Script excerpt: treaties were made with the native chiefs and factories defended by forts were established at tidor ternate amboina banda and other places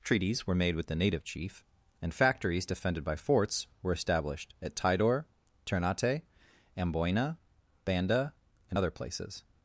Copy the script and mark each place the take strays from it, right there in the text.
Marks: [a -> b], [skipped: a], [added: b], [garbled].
treaties were made with the native [chiefs -> chief] and factories defended by forts were established at tidor ternate amboina banda and other places